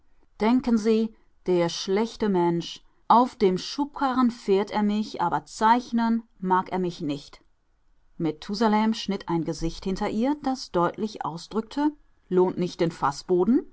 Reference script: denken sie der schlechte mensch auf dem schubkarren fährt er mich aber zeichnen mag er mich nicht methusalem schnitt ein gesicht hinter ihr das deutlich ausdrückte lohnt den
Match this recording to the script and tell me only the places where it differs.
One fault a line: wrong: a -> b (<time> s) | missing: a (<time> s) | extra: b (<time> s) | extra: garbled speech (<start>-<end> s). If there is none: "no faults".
extra: nicht (12.6 s)